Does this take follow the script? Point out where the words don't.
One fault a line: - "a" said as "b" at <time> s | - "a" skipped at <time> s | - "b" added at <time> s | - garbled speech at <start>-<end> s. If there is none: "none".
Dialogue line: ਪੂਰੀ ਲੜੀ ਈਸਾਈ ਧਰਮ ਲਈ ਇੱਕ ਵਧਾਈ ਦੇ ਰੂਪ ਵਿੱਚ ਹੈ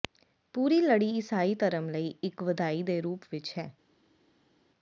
none